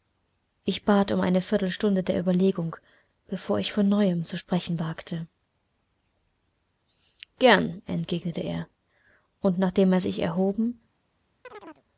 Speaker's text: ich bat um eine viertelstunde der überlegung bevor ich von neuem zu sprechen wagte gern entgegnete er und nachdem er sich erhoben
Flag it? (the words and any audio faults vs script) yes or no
yes